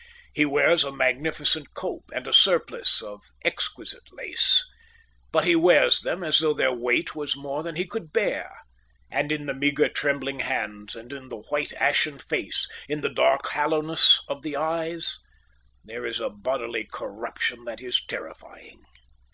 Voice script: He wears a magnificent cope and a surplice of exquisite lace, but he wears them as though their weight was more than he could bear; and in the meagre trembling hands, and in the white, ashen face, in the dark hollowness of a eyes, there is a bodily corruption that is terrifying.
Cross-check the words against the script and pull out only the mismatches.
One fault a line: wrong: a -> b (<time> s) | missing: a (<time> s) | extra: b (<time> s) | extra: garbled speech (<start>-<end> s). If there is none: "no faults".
wrong: a -> the (14.4 s)